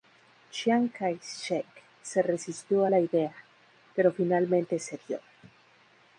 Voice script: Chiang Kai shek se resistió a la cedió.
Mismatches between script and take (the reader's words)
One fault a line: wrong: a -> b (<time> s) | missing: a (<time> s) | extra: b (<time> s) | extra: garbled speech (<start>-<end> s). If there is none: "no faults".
extra: idea pero finalmente (3.0 s)